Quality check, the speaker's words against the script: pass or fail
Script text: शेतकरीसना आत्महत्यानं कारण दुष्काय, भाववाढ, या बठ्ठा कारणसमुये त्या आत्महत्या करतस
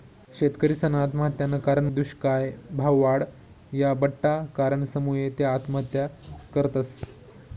pass